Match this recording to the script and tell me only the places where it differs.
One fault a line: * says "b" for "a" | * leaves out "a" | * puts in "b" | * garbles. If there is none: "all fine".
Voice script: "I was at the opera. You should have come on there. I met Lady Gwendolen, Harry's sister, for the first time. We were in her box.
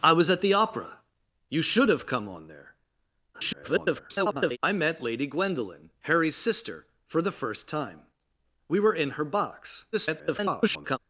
* garbles
* garbles